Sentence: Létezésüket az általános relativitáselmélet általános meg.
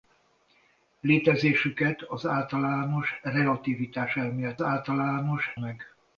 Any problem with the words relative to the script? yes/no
no